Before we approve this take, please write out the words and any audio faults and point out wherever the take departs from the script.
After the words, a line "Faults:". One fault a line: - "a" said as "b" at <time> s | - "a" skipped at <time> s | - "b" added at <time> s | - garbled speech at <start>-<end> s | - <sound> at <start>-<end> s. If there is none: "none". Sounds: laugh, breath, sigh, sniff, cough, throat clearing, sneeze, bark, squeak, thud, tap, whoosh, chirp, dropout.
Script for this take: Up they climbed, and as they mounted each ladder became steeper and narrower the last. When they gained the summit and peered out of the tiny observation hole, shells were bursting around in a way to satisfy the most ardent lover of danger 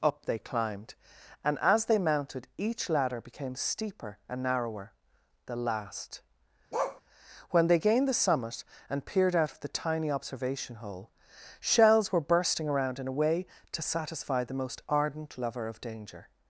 Up they climbed, and as they mounted each ladder became steeper and narrower the last. When they gained the summit and peered out of the tiny observation hole, shells were bursting around in a way to satisfy the most ardent lover of danger
Faults:
- bark at 6.7-7.0 s